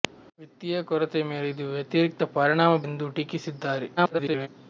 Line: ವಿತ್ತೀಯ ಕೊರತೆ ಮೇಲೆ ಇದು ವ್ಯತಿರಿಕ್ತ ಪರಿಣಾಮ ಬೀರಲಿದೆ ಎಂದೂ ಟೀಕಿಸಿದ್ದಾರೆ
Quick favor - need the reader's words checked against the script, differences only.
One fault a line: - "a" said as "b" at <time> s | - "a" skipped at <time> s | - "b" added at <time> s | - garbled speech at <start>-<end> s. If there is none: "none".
- "ಬೀರಲಿದೆ" skipped at 2.8 s
- garbled speech at 4.0-4.5 s